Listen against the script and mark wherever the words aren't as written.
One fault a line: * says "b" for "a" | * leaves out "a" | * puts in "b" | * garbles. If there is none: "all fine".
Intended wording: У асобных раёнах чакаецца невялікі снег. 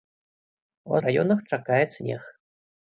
* leaves out "асобных"
* leaves out "невялікі"